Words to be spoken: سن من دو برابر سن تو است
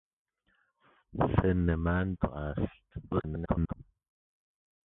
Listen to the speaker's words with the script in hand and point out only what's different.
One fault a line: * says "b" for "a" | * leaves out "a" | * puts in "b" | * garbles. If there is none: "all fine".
* leaves out "دو برابر سن"
* garbles